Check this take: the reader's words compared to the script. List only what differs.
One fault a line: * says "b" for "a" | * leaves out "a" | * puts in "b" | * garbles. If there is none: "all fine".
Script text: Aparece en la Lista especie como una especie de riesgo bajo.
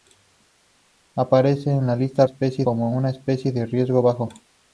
all fine